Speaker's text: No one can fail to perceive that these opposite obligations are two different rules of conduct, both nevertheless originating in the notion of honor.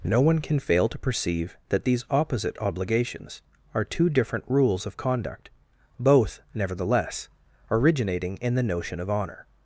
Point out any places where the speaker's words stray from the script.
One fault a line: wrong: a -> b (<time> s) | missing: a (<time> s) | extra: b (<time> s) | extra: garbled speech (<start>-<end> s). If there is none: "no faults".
no faults